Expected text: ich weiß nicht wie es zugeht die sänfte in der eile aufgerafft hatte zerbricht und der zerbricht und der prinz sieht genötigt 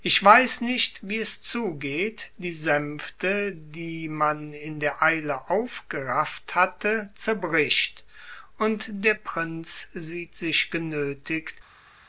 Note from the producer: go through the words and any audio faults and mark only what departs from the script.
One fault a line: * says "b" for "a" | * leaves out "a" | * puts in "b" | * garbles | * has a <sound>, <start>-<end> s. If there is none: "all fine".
* puts in "die man"
* leaves out "zerbricht und der"
* puts in "sich"